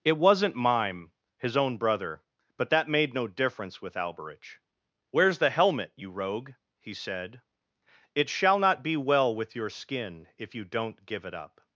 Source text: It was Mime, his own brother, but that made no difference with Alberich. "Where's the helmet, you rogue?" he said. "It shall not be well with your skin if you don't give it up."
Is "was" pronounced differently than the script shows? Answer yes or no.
yes